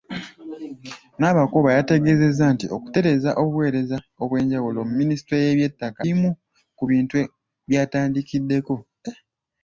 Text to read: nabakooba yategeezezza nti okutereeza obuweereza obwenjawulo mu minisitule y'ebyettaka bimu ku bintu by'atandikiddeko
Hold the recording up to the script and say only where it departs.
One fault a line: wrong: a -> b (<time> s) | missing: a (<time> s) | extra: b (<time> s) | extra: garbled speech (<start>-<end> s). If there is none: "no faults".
no faults